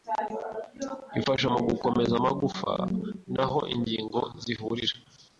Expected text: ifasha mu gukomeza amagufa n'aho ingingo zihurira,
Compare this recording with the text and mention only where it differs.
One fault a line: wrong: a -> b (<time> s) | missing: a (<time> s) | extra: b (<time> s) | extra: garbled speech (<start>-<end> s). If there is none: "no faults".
no faults